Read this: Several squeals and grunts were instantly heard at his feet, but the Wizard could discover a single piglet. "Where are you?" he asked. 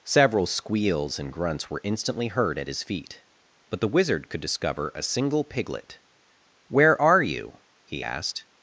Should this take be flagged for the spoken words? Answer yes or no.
no